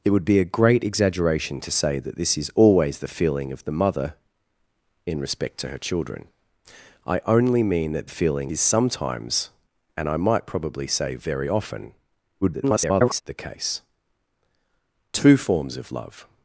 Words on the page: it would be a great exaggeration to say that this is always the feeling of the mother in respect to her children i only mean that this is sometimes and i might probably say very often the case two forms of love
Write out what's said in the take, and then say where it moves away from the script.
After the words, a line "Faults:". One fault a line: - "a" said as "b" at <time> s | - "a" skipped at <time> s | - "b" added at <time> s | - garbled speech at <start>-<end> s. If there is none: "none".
it would be a great exaggeration to say that this is always the feeling of the mother in respect to her children i only mean that feeling is sometimes and i might probably say very often [garbled] the case two forms of love
Faults:
- "this" said as "feeling" at 8.1 s
- garbled speech at 12.4-13.2 s